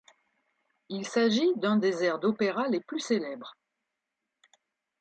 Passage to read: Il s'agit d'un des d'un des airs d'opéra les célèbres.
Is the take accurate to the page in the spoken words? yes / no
no